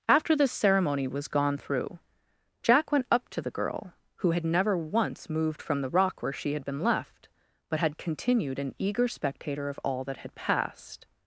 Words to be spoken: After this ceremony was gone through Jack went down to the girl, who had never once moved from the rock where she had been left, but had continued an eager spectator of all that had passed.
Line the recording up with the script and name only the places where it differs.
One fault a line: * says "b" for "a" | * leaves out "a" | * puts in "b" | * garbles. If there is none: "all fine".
* says "up" for "down"